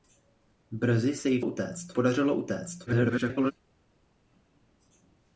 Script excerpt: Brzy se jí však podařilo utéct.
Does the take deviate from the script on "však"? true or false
true